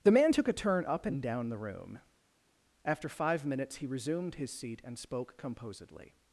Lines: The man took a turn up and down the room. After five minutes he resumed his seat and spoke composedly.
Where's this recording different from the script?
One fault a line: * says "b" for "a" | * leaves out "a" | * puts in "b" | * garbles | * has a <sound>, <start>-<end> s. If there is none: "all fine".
all fine